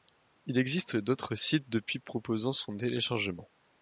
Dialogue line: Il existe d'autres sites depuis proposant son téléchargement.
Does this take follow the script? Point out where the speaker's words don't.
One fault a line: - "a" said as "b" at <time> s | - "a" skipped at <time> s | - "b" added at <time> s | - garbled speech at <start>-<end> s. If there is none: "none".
none